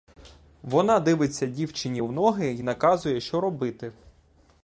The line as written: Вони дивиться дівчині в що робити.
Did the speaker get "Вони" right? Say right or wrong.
wrong